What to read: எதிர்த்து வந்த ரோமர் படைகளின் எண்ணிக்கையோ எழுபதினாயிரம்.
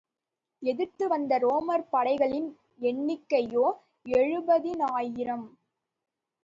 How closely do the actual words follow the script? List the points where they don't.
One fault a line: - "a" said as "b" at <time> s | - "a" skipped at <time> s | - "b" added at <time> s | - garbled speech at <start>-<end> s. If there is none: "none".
none